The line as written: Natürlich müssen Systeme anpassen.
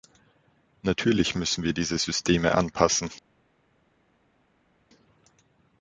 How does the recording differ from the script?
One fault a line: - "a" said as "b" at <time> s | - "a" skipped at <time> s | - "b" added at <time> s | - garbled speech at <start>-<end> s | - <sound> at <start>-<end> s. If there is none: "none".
- "wir diese" added at 1.6 s